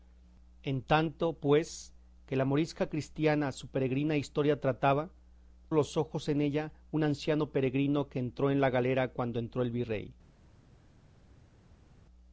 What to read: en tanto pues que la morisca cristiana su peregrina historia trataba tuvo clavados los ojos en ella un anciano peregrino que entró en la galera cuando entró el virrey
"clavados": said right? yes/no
no